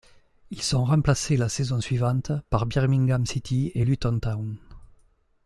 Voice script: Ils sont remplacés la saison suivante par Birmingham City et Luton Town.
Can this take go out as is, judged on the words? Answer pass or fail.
pass